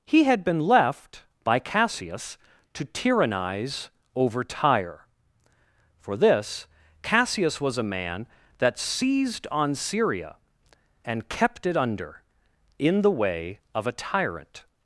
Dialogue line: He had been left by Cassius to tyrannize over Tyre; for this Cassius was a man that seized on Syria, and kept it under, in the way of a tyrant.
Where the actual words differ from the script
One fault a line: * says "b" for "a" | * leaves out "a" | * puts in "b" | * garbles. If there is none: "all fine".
all fine